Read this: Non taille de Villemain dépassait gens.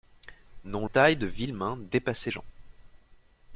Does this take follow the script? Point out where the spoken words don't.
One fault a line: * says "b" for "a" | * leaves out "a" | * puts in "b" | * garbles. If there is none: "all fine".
all fine